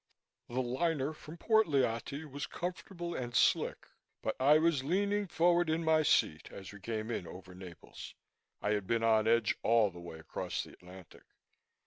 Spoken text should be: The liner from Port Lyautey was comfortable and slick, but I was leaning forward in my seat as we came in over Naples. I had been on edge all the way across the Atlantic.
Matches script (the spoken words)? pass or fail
pass